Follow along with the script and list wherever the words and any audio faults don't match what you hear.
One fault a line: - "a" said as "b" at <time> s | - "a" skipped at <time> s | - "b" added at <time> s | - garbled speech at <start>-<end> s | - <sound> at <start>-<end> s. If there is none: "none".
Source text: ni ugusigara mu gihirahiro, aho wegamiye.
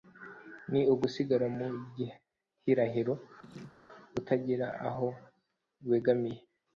- laugh at 3.4-3.8 s
- "utagira" added at 4.2 s